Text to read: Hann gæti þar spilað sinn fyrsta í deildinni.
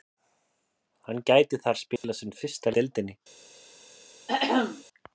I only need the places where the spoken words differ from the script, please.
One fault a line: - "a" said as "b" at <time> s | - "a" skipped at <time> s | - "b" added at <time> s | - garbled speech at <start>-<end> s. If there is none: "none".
none